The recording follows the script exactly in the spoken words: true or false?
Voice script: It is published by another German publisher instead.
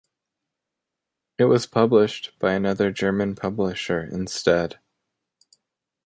false